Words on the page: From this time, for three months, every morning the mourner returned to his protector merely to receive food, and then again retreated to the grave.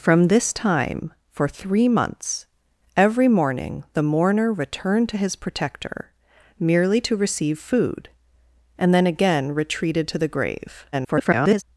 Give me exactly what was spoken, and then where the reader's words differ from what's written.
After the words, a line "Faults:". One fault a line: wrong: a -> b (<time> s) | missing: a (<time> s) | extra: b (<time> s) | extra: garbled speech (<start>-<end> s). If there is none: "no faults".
From this time, for three months, every morning the mourner returned to his protector merely to receive food, and then again retreated to the grave. [garbled]
Faults:
extra: garbled speech (10.9-11.6 s)